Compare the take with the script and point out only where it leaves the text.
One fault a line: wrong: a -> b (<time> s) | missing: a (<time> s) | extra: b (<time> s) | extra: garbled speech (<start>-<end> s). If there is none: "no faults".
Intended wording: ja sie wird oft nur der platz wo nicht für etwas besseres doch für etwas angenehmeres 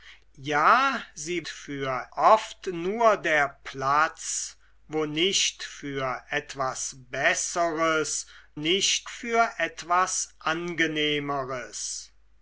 wrong: wird -> für (1.5 s)
wrong: doch -> nicht (8.5 s)